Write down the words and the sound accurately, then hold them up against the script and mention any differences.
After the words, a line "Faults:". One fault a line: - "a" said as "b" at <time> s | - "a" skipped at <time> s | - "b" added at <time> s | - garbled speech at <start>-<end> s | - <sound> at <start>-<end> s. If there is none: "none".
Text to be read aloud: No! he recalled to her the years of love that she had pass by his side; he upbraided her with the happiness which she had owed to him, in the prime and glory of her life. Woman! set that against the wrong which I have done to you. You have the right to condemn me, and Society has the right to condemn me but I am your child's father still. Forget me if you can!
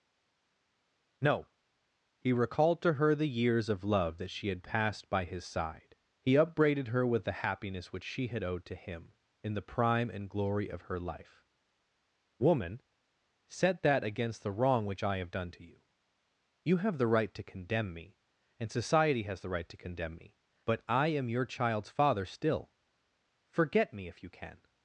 No! he recalled to her the years of love that she had passed by his side; he upbraided her with the happiness which she had owed to him, in the prime and glory of her life. Woman! set that against the wrong which I have done to you. You have the right to condemn me, and Society has the right to condemn me but I am your child's father still. Forget me if you can!
Faults:
- "pass" said as "passed" at 4.6 s